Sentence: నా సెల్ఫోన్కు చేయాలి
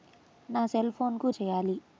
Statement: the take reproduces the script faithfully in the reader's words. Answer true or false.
true